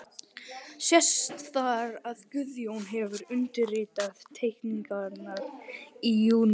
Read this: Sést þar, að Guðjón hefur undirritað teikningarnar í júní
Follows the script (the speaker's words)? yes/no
yes